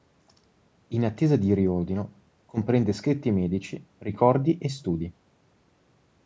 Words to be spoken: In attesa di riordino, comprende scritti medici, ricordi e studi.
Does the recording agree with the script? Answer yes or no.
yes